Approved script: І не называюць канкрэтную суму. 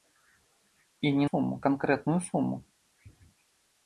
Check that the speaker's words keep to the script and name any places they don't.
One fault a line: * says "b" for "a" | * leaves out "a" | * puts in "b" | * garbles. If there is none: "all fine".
* says "суму" for "называюць"